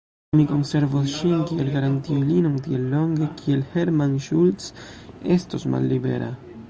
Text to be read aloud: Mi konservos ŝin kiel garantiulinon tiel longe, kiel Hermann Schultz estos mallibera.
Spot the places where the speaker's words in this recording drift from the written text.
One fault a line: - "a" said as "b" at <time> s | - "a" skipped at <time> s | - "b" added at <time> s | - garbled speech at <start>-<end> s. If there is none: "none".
none